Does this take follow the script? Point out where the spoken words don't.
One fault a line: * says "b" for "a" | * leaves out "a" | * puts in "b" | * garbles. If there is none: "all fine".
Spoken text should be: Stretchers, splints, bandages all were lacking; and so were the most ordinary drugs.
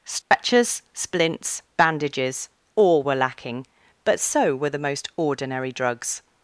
* says "but" for "and"